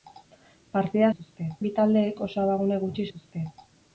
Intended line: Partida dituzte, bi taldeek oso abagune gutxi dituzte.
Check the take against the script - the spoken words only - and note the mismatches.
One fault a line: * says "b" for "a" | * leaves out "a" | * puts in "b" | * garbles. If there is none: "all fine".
all fine